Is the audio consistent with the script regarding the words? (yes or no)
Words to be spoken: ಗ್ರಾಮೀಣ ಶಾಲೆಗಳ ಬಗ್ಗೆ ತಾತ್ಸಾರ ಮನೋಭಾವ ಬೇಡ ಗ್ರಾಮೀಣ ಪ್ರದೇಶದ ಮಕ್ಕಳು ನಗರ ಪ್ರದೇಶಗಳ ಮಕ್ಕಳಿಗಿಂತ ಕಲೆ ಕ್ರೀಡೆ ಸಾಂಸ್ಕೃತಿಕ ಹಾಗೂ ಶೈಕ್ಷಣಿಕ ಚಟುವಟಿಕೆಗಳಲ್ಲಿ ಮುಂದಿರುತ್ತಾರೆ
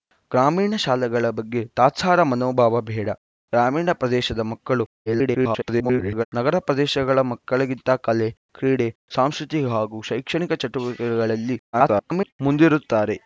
no